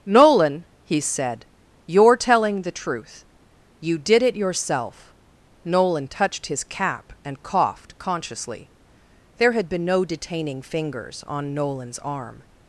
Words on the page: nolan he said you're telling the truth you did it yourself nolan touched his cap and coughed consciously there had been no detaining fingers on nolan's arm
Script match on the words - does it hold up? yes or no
yes